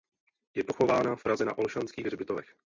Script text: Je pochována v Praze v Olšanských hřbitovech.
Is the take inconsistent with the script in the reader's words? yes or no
yes